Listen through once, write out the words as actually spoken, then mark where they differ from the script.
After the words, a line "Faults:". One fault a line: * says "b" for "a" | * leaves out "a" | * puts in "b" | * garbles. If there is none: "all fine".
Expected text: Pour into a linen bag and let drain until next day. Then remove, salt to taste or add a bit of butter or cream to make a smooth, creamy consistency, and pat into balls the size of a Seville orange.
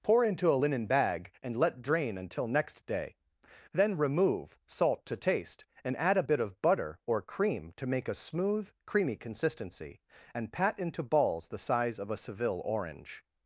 Pour into a linen bag and let drain until next day. Then remove, salt to taste and add a bit of butter or cream to make a smooth, creamy consistency, and pat into balls the size of a Seville orange.
Faults:
* says "and" for "or"